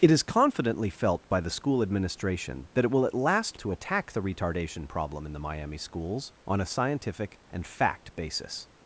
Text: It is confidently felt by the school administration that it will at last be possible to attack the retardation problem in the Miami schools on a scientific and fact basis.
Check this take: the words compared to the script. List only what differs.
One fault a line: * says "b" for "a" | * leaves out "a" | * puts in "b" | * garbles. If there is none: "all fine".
* leaves out "be possible"